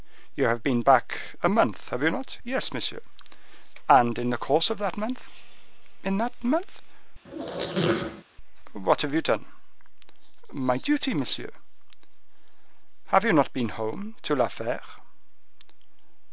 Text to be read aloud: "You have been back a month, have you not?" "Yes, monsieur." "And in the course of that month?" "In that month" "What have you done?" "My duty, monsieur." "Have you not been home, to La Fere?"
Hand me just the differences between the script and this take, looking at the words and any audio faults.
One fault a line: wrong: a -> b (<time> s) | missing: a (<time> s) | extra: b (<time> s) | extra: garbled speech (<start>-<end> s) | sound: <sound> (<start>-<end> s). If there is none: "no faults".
sound: squeak (7.2-8.2 s)